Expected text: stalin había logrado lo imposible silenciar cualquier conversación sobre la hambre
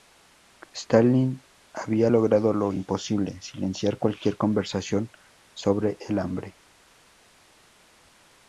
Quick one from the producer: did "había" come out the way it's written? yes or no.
yes